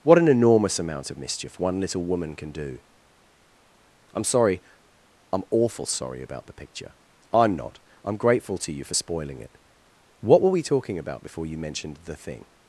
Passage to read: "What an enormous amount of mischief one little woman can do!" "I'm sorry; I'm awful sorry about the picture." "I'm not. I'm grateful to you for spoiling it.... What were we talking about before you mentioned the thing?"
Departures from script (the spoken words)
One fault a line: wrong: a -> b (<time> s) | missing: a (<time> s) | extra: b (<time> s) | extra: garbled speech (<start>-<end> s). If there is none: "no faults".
no faults